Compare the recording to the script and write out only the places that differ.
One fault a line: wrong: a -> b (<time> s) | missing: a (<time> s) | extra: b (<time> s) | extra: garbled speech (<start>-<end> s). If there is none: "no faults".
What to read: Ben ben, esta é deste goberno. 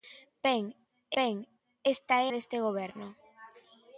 no faults